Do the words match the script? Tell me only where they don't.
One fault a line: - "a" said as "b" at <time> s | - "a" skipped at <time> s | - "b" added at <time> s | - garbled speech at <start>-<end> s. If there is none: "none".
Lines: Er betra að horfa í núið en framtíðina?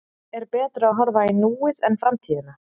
none